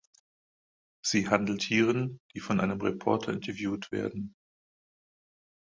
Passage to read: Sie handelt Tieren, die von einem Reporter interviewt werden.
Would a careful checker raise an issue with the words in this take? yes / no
no